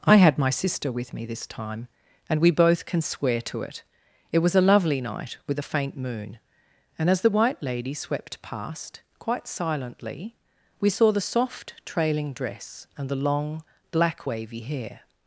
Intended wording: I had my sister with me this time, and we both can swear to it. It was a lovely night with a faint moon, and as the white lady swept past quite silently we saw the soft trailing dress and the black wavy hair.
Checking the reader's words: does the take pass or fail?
fail